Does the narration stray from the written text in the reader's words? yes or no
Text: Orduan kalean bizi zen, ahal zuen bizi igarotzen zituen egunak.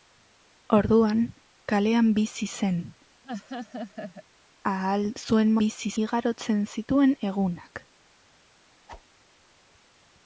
no